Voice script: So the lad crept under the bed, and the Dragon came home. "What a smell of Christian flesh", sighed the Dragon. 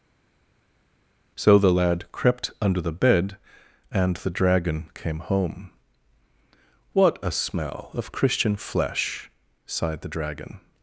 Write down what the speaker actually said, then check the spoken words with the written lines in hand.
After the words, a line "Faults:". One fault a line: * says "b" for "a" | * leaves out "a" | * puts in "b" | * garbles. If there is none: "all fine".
So the lad crept under the bed, and the Dragon came home. "What a smell of Christian flesh", sighed the Dragon.
Faults:
all fine